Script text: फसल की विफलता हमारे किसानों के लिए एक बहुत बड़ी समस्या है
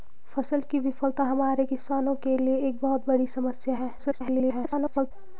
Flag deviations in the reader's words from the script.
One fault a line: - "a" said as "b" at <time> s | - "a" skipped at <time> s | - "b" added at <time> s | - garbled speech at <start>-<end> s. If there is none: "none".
- garbled speech at 4.0-5.1 s